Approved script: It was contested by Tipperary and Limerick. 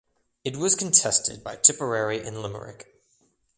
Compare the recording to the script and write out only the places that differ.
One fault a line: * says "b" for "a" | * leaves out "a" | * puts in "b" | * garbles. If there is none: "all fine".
all fine